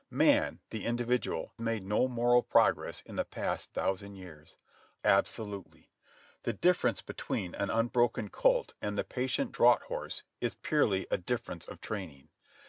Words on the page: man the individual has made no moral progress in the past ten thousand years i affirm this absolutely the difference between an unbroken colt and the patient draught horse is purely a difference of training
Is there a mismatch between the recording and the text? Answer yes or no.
yes